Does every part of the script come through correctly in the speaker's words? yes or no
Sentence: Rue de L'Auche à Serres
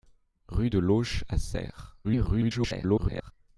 no